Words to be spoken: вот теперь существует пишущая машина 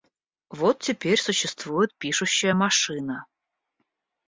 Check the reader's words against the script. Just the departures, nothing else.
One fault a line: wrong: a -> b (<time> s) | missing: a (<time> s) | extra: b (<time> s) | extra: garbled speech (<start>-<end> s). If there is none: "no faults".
no faults